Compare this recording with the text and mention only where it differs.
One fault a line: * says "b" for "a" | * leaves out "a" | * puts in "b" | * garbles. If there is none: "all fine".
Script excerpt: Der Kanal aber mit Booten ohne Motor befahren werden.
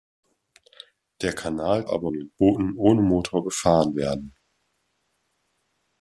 all fine